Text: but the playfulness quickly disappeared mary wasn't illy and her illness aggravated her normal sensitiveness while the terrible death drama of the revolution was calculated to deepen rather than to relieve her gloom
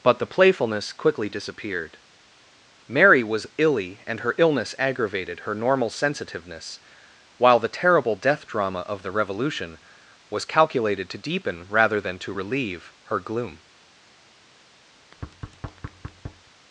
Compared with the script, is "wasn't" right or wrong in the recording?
wrong